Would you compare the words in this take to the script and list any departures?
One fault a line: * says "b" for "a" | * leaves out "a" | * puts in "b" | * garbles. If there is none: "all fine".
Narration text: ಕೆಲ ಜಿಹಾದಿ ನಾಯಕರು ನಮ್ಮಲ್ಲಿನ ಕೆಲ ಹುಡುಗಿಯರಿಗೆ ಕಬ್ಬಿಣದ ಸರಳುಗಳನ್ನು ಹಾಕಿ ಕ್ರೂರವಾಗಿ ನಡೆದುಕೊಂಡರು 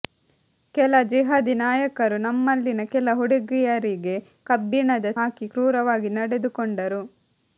* leaves out "ಸರಳುಗಳನ್ನು"